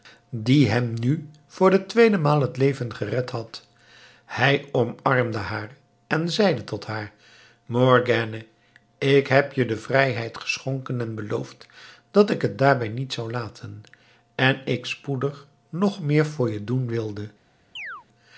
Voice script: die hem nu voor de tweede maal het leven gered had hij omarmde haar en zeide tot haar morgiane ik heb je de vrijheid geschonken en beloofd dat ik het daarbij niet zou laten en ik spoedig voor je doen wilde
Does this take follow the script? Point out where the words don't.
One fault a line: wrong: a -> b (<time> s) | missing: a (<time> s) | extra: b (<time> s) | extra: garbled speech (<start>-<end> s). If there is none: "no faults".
extra: nog meer (15.7 s)